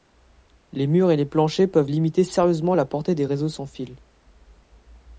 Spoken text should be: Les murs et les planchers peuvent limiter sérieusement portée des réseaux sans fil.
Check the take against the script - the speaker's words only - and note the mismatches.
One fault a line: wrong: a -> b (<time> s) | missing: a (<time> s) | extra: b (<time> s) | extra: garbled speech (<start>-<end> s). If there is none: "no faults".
extra: la (2.7 s)